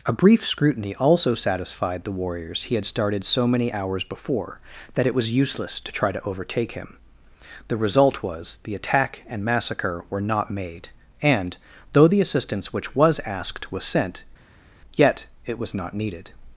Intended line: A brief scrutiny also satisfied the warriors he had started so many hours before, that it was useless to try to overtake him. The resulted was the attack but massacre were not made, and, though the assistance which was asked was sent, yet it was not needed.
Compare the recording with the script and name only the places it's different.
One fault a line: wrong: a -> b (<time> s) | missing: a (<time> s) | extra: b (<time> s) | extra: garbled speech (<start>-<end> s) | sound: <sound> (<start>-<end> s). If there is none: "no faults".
wrong: resulted -> result (7.8 s)
wrong: but -> and (9.3 s)